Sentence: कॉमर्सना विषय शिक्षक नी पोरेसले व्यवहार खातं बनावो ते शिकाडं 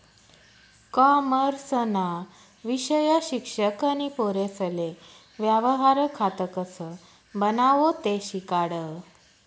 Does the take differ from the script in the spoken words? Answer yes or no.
yes